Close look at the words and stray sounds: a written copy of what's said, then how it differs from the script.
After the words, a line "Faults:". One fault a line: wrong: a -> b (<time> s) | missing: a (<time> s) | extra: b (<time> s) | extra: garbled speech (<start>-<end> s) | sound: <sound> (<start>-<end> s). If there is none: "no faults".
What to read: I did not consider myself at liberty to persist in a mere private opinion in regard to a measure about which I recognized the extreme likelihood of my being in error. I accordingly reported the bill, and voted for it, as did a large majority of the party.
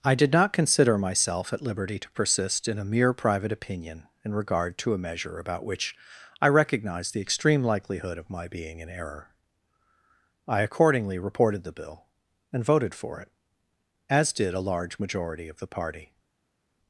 I did not consider myself at liberty to persist in a mere private opinion in regard to a measure about which I recognized the extreme likelihood of my being in error. I accordingly reported the bill, and voted for it, as did a large majority of the party.
Faults:
no faults